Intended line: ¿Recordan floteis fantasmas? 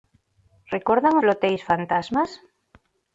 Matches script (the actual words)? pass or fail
pass